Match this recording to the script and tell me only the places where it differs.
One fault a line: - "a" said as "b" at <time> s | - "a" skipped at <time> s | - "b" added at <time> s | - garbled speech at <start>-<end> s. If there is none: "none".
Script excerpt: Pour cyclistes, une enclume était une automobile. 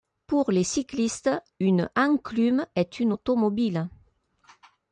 - "les" added at 0.5 s
- "était" said as "est" at 2.7 s